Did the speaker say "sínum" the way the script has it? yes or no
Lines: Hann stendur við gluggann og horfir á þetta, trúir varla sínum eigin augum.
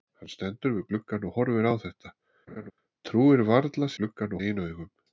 no